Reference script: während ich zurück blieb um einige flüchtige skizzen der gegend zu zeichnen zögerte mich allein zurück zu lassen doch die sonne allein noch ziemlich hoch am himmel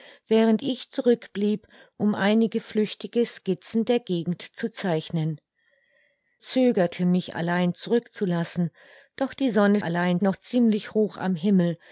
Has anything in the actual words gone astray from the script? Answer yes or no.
no